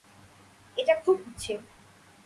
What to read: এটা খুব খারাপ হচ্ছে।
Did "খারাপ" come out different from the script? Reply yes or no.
yes